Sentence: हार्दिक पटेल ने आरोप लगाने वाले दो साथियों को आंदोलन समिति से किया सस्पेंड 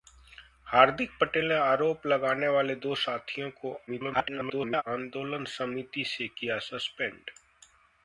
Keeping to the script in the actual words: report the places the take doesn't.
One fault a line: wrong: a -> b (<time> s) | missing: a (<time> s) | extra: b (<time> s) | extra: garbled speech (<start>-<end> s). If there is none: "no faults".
extra: garbled speech (3.9-4.8 s)